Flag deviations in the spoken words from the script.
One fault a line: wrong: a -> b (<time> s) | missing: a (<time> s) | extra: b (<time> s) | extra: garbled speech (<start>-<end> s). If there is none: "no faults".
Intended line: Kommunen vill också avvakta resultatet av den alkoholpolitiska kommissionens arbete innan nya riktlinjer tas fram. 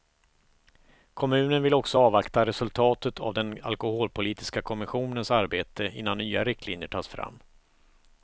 no faults